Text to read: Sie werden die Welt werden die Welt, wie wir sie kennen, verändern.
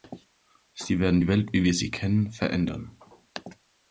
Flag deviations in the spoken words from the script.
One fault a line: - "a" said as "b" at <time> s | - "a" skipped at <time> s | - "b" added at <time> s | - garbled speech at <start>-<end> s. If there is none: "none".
- "werden die Welt" skipped at 1.5 s